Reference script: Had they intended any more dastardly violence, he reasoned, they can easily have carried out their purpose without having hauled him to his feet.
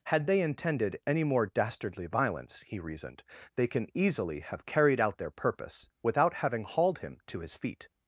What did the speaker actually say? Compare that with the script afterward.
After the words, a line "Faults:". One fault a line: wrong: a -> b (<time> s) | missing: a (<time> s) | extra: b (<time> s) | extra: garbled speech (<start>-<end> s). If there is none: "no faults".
Had they intended any more dastardly violence, he reasoned, they can easily have carried out their purpose without having hauled him to his feet.
Faults:
no faults